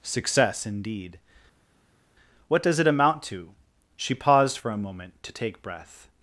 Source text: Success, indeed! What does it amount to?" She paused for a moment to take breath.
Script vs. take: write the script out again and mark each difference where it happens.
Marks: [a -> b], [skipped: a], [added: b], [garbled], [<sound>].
Success, indeed! What does it amount to?" She paused for a moment to take breath.